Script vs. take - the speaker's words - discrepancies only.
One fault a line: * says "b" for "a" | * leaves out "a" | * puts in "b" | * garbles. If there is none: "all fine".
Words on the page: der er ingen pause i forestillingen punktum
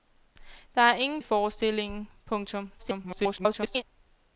* leaves out "pause"
* garbles